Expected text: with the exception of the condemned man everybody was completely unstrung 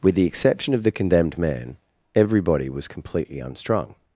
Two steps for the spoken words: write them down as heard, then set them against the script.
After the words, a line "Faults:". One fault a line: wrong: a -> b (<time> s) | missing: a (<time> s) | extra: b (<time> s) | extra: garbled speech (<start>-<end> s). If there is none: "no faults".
with the exception of the condemned man everybody was completely unstrung
Faults:
no faults